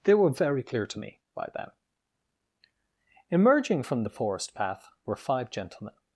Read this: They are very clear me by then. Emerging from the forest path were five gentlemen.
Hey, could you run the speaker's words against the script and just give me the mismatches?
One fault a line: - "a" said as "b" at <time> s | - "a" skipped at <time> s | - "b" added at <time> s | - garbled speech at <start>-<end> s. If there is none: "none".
- "are" said as "were" at 0.1 s
- "to" added at 0.9 s